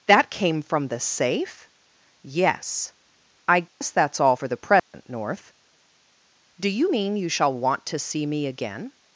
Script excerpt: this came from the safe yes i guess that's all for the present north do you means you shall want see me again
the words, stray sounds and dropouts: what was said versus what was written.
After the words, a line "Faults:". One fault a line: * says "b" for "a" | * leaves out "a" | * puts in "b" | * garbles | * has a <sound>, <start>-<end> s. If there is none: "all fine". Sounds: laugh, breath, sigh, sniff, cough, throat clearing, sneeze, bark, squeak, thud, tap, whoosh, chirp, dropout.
that came from the safe yes i guess that's all for the present north do you mean you shall want to see me again
Faults:
* says "that" for "this"
* has a dropout, 3.7-3.8 s
* has a dropout, 4.8-4.9 s
* says "mean" for "means"
* puts in "to"